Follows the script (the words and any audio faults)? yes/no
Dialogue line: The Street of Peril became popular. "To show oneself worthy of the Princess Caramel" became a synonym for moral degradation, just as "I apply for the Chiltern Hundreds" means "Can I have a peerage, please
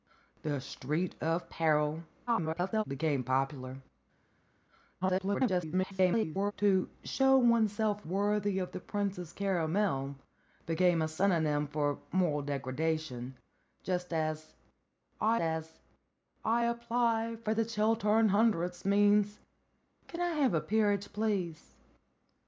no